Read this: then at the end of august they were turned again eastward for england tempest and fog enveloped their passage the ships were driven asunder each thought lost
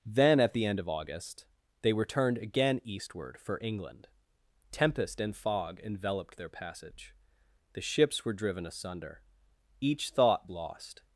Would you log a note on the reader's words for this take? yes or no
no